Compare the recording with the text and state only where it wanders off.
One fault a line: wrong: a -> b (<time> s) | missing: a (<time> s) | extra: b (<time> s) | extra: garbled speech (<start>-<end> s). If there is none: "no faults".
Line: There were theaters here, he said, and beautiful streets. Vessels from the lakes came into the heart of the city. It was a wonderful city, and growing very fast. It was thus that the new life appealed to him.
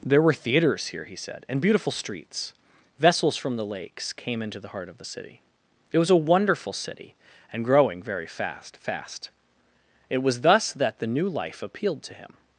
extra: fast (8.8 s)